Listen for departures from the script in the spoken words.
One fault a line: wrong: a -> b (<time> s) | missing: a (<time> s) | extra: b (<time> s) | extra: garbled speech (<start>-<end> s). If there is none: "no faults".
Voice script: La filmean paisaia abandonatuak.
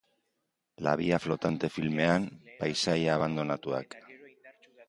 extra: via flotante (1.0 s)